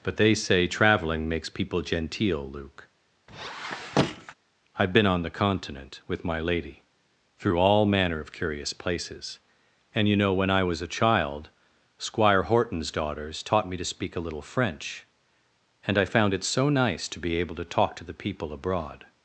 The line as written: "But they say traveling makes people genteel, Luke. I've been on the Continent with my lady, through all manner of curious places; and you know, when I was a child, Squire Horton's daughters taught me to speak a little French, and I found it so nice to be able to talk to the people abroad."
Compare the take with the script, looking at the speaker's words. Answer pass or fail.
pass